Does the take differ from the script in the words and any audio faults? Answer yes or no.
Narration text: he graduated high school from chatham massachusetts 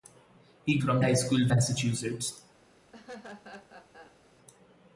yes